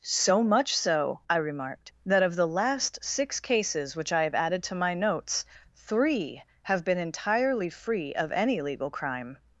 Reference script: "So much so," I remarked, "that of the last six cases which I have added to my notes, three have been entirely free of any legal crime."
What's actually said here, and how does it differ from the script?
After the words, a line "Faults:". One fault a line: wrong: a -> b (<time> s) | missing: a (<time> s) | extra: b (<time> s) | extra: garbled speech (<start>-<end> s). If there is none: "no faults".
"So much so," I remarked, "that of the last six cases which I have added to my notes, three have been entirely free of any legal crime."
Faults:
no faults